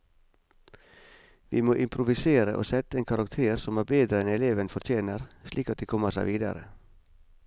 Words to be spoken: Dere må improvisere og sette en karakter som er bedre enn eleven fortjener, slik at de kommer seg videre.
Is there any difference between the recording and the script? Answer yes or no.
yes